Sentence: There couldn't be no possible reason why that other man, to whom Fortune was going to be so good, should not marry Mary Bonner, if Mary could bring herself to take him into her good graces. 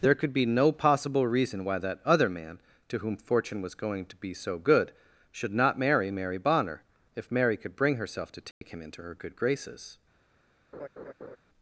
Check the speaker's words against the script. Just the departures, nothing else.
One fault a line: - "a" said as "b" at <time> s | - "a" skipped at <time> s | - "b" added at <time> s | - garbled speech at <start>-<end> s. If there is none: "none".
- "couldn't" said as "could" at 0.1 s